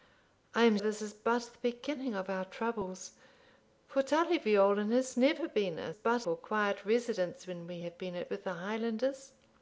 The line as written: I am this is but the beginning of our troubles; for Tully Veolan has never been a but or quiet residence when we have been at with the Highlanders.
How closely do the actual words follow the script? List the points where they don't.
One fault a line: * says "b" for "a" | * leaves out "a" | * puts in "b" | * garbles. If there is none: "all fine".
all fine